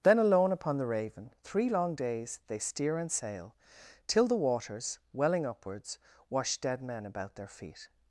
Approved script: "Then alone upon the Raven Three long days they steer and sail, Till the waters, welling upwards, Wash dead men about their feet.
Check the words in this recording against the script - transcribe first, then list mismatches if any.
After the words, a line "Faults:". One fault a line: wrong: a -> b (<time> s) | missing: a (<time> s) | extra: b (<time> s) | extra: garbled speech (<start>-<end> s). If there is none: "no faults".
"Then alone upon the Raven Three long days they steer and sail, Till the waters, welling upwards, Wash dead men about their feet.
Faults:
no faults